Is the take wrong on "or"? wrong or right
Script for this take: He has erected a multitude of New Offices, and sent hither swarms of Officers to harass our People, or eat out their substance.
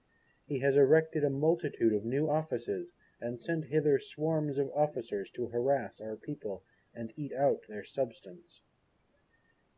wrong